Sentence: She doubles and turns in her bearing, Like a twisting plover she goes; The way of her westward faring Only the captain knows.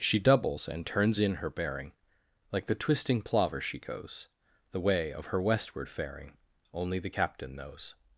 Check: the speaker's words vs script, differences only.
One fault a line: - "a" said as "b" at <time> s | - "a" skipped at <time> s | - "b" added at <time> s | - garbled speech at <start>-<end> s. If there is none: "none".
- "a" said as "the" at 2.6 s